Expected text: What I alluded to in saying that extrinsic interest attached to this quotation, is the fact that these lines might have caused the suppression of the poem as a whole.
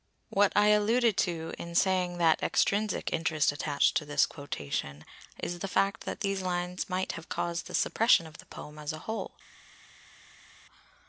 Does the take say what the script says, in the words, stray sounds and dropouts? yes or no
yes